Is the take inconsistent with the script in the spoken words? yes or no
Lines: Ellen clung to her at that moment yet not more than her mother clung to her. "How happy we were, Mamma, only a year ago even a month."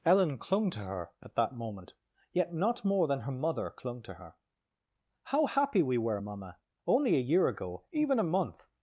no